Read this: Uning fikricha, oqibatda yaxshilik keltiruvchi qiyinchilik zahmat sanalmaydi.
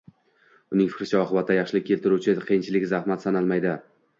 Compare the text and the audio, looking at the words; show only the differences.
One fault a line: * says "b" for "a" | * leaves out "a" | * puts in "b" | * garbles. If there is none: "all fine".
all fine